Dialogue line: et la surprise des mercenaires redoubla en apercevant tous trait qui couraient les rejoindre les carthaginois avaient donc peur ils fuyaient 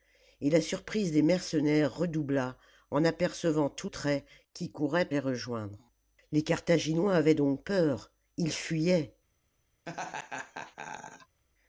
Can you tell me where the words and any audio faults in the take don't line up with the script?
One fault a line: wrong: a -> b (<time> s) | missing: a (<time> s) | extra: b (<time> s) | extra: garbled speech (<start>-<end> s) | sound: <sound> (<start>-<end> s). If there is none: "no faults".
sound: laugh (9.9-11.4 s)